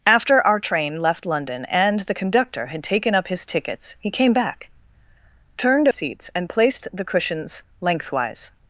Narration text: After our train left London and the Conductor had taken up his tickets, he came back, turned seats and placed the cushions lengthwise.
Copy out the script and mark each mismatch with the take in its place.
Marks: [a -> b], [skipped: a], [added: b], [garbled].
After our train left London and the Conductor had taken up his tickets, he came back, turned seats and placed the cushions lengthwise.